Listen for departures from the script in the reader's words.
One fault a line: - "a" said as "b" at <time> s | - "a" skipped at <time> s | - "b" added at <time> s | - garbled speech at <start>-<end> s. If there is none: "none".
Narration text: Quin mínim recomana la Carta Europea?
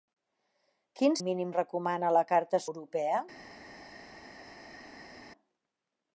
none